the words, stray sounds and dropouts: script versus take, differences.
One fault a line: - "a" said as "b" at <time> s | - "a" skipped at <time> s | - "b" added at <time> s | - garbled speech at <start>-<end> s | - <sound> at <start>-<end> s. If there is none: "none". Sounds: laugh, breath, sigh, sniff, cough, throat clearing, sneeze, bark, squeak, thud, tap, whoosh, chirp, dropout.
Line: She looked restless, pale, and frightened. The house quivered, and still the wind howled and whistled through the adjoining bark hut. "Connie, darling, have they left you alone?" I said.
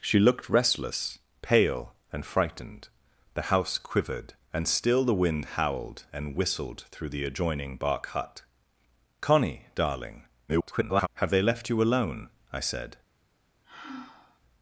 - garbled speech at 10.5-11.1 s
- sigh at 13.6-14.4 s